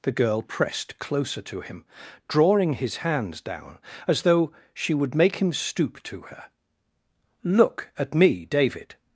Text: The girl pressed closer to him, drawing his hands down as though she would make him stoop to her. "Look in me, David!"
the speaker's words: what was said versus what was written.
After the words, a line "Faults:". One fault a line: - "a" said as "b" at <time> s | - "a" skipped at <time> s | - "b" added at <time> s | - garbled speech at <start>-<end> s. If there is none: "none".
The girl pressed closer to him, drawing his hands down as though she would make him stoop to her. "Look at me, David!"
Faults:
- "in" said as "at" at 8.0 s